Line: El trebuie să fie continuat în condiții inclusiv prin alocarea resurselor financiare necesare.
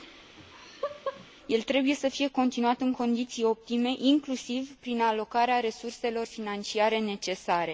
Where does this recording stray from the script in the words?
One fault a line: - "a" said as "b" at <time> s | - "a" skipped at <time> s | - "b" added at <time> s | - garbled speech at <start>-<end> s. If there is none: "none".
- "optime" added at 3.4 s